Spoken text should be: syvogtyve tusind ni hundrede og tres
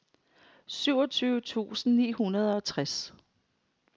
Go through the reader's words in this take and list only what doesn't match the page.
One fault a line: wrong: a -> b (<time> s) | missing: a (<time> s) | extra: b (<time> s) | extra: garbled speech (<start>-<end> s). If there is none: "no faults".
no faults